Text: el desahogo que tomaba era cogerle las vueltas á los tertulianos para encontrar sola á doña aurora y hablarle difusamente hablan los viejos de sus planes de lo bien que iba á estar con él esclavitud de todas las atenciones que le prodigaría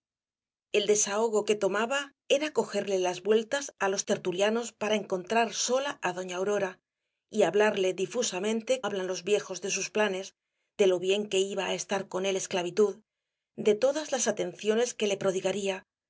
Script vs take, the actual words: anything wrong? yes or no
no